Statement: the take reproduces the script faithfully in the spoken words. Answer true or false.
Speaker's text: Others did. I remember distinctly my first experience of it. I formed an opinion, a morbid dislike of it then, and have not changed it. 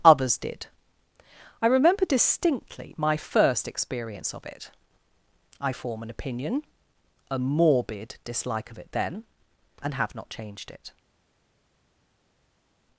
false